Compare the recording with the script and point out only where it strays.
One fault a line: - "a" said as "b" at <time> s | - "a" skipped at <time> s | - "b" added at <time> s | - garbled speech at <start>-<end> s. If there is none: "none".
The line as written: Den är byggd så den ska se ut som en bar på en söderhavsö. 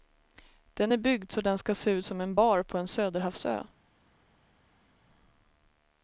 none